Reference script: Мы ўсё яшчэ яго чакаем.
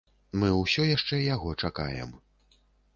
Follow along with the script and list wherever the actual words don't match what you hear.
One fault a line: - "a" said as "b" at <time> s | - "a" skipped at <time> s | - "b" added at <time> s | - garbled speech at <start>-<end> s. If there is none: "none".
none